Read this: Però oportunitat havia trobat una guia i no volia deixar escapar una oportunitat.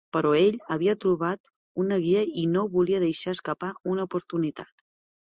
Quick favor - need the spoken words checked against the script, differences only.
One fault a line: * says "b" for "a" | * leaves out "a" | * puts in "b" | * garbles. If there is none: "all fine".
* says "ell" for "oportunitat"